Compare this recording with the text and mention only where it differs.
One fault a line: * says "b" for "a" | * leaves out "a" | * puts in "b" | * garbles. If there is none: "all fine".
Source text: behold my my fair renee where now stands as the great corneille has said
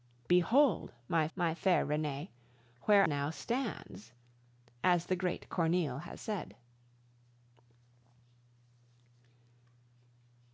all fine